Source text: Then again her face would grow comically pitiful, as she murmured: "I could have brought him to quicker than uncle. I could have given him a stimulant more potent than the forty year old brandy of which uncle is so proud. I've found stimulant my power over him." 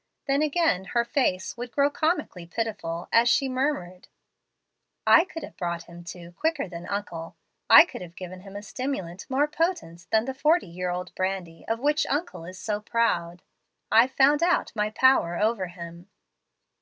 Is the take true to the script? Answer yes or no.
no